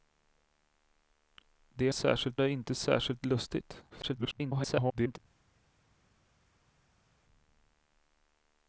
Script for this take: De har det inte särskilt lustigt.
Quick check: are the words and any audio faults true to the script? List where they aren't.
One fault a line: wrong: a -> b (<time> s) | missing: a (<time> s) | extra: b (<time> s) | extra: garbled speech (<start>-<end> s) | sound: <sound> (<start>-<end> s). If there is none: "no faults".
wrong: har -> särskilt (1.9 s)
extra: garbled speech (3.9-5.2 s)